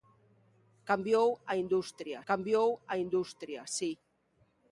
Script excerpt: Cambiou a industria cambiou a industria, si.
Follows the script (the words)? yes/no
yes